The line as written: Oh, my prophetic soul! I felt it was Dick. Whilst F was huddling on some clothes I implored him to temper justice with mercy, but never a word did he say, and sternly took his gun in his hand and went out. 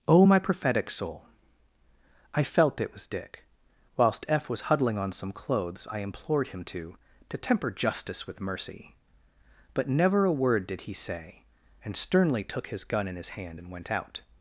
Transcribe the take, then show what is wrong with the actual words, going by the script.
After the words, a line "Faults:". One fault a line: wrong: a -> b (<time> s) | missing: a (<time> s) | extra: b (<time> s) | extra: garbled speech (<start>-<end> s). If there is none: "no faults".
Oh, my prophetic soul! I felt it was Dick. Whilst F was huddling on some clothes I implored him to to temper justice with mercy, but never a word did he say, and sternly took his gun in his hand and went out.
Faults:
extra: to (7.3 s)